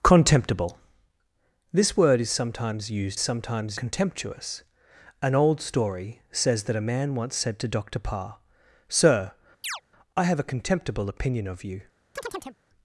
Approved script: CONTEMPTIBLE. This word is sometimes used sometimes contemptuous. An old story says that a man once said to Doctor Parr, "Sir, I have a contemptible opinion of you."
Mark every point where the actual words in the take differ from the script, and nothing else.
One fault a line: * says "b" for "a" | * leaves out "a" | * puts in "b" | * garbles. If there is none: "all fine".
all fine